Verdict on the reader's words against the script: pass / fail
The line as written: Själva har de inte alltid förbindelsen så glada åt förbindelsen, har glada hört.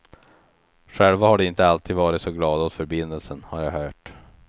fail